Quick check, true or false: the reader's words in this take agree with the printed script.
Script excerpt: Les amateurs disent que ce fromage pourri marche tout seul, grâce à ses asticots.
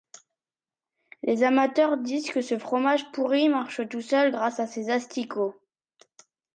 true